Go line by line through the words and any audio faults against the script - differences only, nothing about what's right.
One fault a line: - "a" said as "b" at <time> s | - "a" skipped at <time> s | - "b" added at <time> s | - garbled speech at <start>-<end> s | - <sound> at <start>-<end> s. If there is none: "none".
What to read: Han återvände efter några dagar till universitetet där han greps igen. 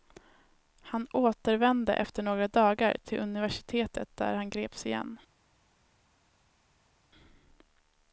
none